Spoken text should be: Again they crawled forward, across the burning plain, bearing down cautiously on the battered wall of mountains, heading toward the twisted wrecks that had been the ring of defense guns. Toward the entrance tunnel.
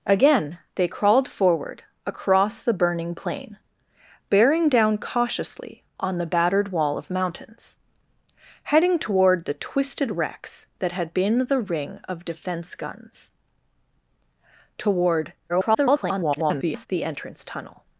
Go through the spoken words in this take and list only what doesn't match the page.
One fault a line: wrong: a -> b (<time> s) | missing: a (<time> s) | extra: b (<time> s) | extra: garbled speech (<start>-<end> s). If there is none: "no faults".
extra: garbled speech (15.5-16.9 s)